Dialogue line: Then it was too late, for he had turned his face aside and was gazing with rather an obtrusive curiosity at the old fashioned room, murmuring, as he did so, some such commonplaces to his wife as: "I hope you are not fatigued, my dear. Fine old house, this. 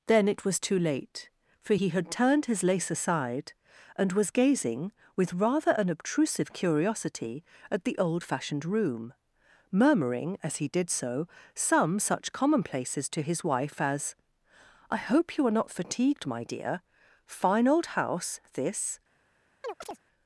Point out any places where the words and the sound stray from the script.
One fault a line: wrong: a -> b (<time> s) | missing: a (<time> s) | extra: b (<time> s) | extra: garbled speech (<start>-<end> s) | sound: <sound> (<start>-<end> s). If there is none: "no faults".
wrong: face -> lace (2.6 s)
sound: chirp (19.6-20.0 s)